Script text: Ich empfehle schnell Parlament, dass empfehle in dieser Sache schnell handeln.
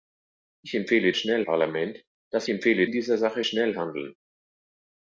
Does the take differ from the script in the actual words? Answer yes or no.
no